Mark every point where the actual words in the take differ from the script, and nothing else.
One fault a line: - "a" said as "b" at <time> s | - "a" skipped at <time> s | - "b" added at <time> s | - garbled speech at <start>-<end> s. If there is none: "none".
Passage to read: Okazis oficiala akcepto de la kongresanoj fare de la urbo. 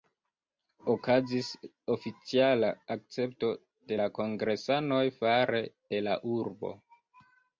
none